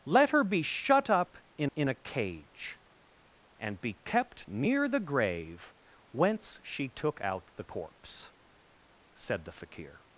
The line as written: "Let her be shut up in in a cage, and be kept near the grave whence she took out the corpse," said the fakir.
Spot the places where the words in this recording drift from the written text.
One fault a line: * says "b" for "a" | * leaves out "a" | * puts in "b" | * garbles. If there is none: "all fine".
all fine